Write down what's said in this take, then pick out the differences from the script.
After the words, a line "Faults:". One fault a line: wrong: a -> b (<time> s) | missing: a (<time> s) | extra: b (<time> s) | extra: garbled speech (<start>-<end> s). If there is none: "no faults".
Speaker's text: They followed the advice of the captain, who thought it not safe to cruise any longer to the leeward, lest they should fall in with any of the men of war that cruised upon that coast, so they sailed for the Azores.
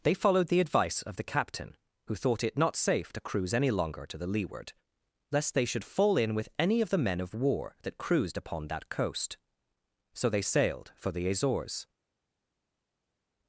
They followed the advice of the captain, who thought it not safe to cruise any longer to the leeward, lest they should fall in with any of the men of war that cruised upon that coast, so they sailed for the Azores.
Faults:
no faults